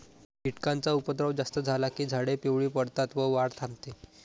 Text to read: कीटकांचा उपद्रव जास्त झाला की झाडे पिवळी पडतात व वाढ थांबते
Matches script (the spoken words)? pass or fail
pass